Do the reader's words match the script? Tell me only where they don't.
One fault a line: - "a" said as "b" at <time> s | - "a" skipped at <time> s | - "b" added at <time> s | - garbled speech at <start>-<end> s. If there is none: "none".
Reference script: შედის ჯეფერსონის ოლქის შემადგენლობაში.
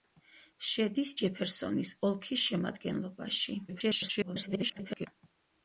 - garbled speech at 3.7-5.1 s